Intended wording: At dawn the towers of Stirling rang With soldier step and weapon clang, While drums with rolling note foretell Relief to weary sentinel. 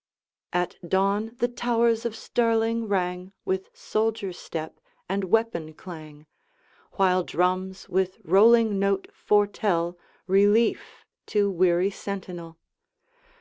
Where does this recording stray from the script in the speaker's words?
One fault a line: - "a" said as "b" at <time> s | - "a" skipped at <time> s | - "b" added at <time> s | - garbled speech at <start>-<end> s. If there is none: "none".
none